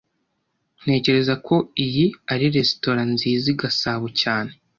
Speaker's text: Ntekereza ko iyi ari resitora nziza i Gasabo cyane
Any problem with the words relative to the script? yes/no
no